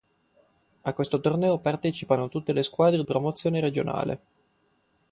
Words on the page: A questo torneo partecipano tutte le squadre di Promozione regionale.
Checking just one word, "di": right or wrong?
wrong